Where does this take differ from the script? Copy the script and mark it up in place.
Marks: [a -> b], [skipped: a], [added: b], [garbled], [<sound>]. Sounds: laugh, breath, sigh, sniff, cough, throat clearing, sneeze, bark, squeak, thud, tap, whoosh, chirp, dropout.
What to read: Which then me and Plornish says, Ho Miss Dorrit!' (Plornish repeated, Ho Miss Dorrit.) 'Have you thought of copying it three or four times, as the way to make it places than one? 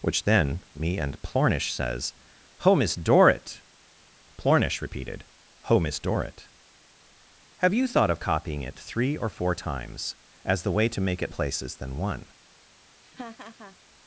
Which then me and Plornish says, Ho Miss Dorrit!' (Plornish repeated, Ho Miss Dorrit.) 'Have you thought of copying it three or four times, as the way to make it places than one? [laugh]